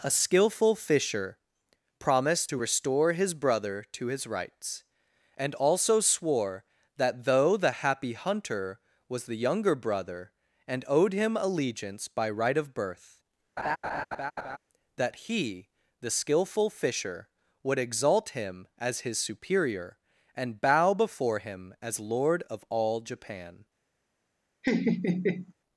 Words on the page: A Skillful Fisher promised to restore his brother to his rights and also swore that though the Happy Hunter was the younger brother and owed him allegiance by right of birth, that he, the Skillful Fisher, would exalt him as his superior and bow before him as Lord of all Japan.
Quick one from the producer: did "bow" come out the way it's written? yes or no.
yes